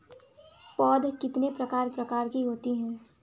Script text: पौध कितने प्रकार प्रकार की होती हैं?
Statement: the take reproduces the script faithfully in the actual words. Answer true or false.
true